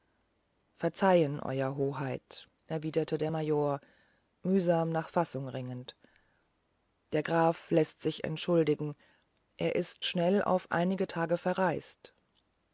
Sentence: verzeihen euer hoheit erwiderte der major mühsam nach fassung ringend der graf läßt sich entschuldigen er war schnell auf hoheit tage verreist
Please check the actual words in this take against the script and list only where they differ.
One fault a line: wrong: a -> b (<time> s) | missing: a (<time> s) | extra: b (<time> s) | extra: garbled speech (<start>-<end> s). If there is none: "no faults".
wrong: war -> ist (9.7 s)
wrong: hoheit -> einige (10.7 s)